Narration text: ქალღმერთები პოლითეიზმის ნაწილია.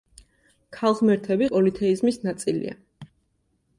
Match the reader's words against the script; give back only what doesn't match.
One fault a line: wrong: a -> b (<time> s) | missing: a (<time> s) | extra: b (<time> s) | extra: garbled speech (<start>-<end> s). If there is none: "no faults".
no faults